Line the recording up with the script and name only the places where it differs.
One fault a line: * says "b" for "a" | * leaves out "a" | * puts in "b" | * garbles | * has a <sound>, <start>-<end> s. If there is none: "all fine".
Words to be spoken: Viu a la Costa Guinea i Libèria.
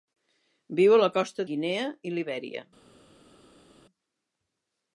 all fine